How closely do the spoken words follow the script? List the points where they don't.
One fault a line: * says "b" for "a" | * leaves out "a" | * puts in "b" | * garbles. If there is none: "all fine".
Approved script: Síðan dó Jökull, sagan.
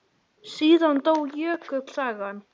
all fine